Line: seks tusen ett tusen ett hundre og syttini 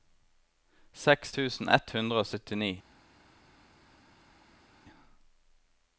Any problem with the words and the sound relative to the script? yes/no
yes